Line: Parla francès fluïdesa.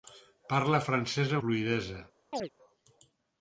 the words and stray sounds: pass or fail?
fail